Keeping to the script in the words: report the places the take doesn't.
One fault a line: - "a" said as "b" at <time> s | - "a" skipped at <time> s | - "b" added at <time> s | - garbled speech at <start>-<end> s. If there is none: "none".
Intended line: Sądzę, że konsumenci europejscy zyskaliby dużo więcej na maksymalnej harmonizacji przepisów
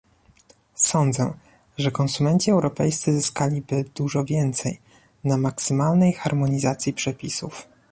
none